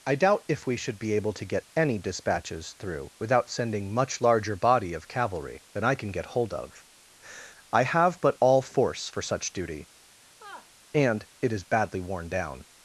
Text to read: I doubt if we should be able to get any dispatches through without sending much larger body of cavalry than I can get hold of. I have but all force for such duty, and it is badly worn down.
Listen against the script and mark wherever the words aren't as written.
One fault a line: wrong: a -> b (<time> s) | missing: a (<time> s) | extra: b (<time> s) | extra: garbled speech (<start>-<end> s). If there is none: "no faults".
no faults